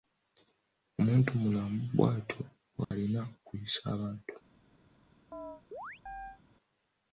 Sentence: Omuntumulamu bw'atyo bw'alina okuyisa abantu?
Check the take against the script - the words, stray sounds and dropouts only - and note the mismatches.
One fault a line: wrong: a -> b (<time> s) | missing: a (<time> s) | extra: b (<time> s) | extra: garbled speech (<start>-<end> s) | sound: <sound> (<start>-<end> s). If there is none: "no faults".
sound: dropout (2.8-2.9 s)
sound: chirp (5.3-6.4 s)